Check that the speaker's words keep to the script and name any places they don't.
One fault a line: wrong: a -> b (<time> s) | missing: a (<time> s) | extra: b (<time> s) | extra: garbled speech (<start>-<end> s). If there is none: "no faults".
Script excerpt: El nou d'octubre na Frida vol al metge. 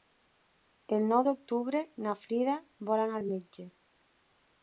extra: anar (3.1 s)